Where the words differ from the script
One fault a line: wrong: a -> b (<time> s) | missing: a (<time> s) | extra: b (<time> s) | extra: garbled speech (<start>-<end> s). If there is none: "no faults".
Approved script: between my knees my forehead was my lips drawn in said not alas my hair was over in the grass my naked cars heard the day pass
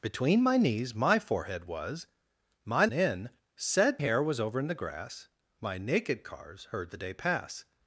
missing: lips drawn (2.9 s)
missing: not alas my (4.0 s)